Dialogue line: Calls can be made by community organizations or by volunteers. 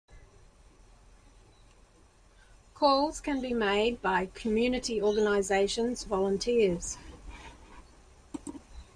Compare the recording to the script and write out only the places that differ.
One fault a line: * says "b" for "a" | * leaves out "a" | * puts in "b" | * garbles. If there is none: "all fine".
* leaves out "or by"